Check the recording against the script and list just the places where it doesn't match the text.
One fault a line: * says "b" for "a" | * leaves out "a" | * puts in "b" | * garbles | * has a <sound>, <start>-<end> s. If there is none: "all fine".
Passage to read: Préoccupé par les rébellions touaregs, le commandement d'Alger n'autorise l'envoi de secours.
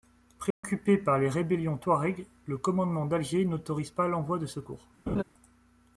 * has a dropout, 0.5-0.6 s
* puts in "pas"
* has a laugh, 5.1-5.2 s